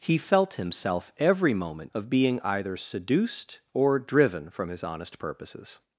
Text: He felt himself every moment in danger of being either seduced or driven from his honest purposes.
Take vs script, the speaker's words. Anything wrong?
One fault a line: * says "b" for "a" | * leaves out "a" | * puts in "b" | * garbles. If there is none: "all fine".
* leaves out "in danger"